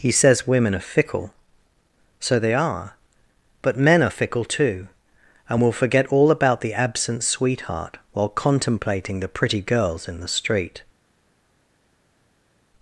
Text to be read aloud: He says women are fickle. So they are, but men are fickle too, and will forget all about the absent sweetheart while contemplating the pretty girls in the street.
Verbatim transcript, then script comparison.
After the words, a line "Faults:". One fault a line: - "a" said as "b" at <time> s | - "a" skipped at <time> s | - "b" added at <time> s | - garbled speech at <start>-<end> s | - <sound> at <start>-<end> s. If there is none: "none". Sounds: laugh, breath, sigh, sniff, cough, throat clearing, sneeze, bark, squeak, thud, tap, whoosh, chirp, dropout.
He says women are fickle. So they are, but men are fickle too, and will forget all about the absent sweetheart while contemplating the pretty girls in the street.
Faults:
none